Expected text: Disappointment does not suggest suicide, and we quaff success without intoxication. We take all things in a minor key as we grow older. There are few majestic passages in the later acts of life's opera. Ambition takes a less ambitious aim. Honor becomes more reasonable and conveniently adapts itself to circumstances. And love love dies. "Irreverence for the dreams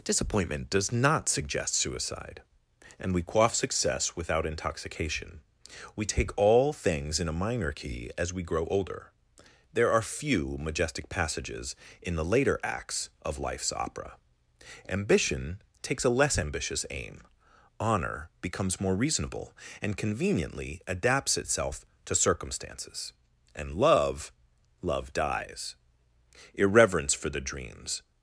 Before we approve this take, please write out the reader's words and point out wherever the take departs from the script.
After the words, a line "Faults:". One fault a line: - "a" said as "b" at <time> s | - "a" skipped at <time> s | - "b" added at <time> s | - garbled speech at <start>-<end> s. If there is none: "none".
Disappointment does not suggest suicide, and we quaff success without intoxication. We take all things in a minor key as we grow older. There are few majestic passages in the later acts of life's opera. Ambition takes a less ambitious aim. Honor becomes more reasonable and conveniently adapts itself to circumstances. And love love dies. "Irreverence for the dreams
Faults:
none